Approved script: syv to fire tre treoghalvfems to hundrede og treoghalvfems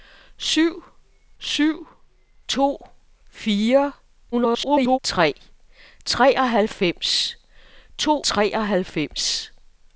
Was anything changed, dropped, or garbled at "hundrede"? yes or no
yes